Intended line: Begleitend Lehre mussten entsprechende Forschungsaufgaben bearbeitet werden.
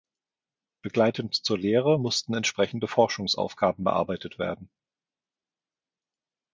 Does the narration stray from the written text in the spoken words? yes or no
yes